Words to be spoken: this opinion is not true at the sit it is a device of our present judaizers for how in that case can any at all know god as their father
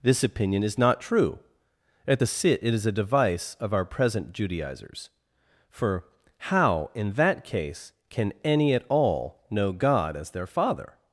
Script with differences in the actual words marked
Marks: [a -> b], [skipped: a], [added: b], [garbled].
this opinion is not true at the sit it is a device of our present judaizers for how in that case can any at all know god as their father